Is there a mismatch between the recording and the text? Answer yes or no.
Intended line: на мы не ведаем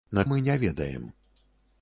no